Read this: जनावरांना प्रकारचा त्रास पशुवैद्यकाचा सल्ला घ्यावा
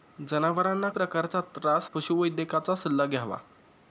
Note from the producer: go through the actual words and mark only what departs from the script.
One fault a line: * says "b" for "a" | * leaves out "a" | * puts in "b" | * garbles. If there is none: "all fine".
all fine